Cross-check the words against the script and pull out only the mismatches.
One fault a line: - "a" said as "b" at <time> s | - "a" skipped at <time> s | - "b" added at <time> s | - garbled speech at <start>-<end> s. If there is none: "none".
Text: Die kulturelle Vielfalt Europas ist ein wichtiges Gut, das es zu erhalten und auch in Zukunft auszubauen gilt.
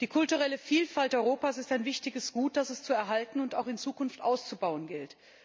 none